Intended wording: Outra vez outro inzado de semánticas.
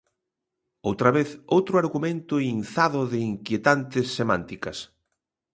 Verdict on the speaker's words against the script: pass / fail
fail